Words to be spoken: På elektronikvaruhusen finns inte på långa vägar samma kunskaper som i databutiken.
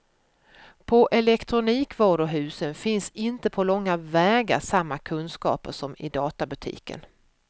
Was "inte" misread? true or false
false